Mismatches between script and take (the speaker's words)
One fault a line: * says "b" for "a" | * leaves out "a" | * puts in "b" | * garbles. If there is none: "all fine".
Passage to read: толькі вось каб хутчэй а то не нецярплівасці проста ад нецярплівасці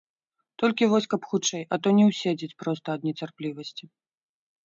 * says "ўседзець" for "нецярплівасці"